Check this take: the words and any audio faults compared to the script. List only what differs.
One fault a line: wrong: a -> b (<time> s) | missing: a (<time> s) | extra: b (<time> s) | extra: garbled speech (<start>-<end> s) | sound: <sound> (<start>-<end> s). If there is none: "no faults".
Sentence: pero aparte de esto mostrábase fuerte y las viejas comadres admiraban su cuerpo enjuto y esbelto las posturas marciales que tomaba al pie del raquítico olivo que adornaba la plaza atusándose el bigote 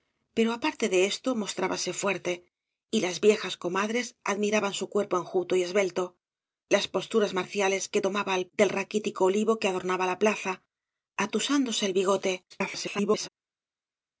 missing: pie (8.5 s)
extra: garbled speech (12.5-13.3 s)